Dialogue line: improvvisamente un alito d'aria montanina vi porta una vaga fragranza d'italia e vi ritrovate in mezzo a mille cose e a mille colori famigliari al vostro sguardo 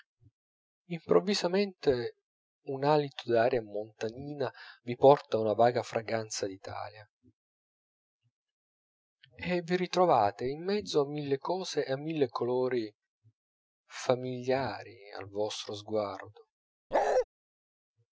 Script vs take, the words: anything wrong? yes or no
no